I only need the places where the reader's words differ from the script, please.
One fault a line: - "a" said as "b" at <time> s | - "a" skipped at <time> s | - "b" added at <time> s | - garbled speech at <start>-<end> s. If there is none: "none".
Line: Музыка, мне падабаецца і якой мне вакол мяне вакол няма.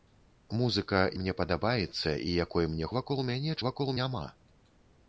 none